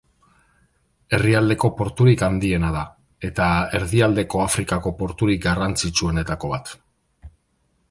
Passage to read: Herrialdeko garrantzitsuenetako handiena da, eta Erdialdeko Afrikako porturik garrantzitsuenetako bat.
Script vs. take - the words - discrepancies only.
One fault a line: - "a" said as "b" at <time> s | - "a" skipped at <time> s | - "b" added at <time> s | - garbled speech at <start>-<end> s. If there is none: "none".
- "garrantzitsuenetako" said as "porturik" at 1.8 s